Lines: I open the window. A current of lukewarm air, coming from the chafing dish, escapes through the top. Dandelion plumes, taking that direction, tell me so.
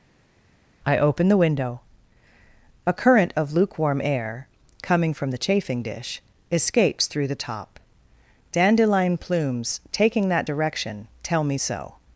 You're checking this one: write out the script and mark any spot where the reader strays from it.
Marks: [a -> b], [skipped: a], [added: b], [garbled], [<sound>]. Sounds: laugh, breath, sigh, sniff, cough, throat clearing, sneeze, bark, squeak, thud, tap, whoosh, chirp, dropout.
I open the window. A current of lukewarm air, coming from the chafing dish, escapes through the top. Dandelion plumes, taking that direction, tell me so.